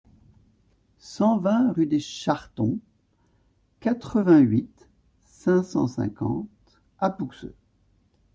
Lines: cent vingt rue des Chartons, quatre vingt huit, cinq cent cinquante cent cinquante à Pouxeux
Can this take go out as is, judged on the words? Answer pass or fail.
fail